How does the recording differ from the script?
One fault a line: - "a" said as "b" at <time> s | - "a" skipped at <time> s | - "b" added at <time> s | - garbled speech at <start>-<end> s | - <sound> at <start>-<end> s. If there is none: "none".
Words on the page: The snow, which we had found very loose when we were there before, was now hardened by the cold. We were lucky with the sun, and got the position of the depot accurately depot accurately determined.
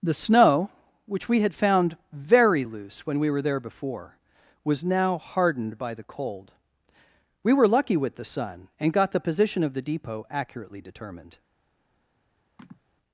- "depot accurately" skipped at 10.8 s
- sigh at 12.6-12.8 s